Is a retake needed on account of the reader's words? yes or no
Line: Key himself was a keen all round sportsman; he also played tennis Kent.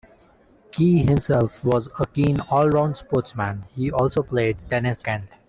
no